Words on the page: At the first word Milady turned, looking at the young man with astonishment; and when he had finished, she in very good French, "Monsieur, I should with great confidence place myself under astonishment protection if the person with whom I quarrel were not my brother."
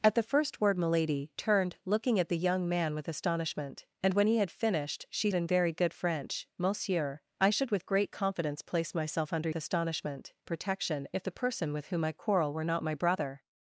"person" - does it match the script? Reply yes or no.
yes